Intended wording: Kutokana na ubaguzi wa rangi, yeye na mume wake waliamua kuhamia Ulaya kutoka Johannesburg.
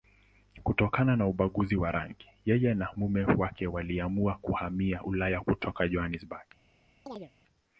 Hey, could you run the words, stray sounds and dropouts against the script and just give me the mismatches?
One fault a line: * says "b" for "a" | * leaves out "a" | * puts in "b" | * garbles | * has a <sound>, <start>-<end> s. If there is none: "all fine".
* has a chirp, 7.1-7.3 s